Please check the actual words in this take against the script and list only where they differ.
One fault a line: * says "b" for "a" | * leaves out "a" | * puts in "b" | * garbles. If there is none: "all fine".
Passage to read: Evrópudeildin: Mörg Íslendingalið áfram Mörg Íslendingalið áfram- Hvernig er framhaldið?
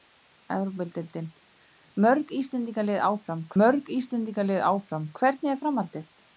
all fine